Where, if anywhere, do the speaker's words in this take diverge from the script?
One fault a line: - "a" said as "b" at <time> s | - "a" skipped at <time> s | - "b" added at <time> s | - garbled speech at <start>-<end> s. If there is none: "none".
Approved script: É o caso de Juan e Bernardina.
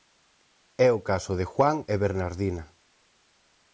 none